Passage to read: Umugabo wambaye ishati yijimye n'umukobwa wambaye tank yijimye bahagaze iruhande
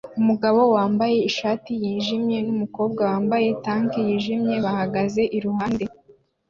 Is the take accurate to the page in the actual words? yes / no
yes